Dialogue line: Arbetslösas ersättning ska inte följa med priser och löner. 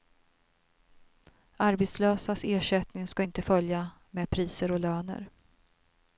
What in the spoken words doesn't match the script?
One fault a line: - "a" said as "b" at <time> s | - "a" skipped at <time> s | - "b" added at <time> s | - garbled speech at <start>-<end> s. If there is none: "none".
none